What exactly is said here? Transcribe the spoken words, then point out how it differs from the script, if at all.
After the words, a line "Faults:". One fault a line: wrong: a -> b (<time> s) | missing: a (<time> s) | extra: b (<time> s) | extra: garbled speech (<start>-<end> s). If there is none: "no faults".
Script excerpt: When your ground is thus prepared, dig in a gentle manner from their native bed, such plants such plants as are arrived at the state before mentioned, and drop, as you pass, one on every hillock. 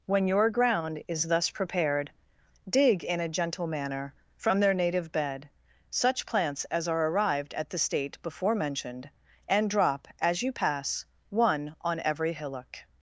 When your ground is thus prepared, dig in a gentle manner from their native bed, such plants as are arrived at the state before mentioned, and drop, as you pass, one on every hillock.
Faults:
missing: such plants (6.7 s)